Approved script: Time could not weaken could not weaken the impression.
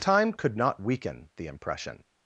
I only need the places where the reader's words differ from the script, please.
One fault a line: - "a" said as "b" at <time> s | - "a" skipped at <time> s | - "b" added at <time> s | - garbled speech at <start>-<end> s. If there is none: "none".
- "could not weaken" skipped at 1.3 s